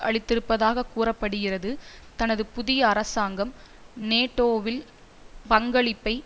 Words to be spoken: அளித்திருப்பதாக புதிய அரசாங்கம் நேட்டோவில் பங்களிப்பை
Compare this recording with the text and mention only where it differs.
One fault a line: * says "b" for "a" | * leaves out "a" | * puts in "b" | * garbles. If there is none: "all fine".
* puts in "கூற படுகிறது தனது"